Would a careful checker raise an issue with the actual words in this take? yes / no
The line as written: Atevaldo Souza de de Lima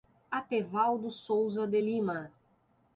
yes